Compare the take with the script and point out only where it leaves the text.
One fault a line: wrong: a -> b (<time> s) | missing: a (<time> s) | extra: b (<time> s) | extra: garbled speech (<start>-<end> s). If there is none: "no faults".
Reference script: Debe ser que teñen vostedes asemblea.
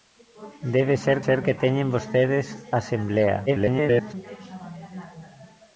extra: ser (1.3 s)
extra: garbled speech (3.5-4.1 s)